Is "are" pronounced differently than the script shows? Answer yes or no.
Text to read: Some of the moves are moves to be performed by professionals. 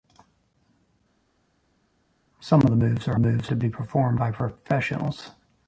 no